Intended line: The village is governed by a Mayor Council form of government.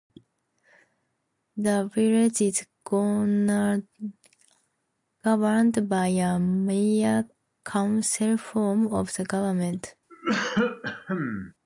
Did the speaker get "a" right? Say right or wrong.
right